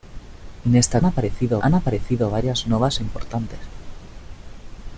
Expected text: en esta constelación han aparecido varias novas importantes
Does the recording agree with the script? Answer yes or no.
no